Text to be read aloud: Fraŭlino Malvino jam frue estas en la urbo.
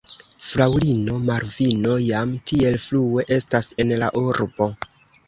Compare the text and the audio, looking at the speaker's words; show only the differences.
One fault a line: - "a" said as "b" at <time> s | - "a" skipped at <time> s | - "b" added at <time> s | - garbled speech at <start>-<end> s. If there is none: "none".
- "tiel" added at 2.5 s